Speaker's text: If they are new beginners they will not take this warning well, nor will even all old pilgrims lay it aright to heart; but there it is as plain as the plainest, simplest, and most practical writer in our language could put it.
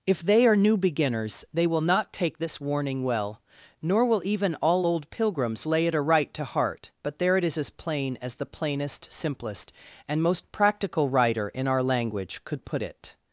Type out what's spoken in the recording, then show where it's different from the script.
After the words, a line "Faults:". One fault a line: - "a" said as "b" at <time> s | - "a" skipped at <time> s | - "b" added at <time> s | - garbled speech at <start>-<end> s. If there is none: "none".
If they are new beginners they will not take this warning well, nor will even all old pilgrims lay it aright to heart; but there it is as plain as the plainest, simplest, and most practical writer in our language could put it.
Faults:
none